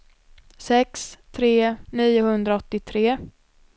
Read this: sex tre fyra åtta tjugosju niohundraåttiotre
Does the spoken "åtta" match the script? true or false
false